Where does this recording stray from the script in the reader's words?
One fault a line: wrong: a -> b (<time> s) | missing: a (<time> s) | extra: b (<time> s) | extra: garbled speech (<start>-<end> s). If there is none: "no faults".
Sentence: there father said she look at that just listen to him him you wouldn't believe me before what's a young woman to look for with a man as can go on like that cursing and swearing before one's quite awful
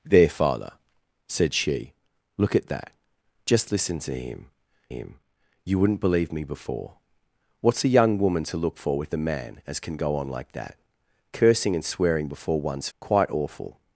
no faults